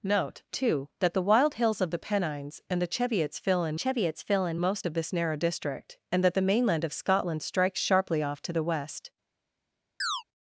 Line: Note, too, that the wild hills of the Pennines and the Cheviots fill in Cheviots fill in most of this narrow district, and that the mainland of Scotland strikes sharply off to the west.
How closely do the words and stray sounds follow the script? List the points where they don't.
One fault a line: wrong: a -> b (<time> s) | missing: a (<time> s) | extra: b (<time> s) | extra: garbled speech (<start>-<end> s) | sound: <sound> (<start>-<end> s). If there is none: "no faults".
sound: chirp (10.0-10.2 s)